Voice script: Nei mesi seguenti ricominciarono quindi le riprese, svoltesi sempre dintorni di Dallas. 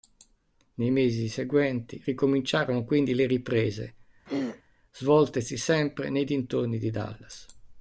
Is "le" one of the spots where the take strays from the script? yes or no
no